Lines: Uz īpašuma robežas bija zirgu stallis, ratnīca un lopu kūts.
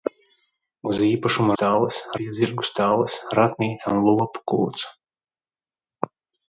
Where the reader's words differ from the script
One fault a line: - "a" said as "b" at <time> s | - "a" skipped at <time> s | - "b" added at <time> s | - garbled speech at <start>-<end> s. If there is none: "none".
- "robežas" said as "stallis" at 1.5 s